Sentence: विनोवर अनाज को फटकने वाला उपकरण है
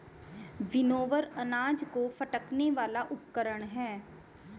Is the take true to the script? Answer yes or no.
yes